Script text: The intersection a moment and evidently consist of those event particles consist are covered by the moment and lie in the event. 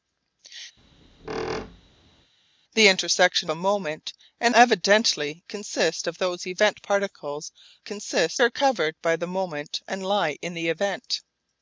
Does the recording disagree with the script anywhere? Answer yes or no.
no